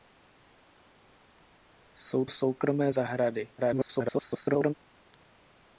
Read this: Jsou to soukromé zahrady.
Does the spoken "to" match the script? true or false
false